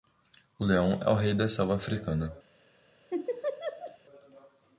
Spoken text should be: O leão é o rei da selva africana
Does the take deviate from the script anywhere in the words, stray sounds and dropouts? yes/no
yes